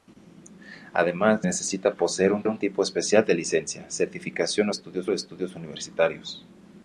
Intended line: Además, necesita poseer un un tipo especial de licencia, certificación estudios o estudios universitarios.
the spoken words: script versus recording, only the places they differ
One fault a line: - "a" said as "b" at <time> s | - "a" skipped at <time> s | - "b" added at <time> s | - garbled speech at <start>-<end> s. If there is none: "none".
none